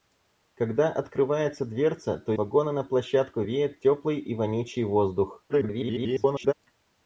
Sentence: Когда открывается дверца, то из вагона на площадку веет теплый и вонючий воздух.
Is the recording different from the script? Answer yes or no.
yes